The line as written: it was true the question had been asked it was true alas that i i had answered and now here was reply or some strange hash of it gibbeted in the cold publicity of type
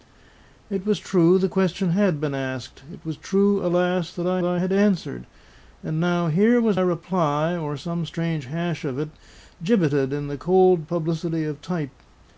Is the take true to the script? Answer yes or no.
yes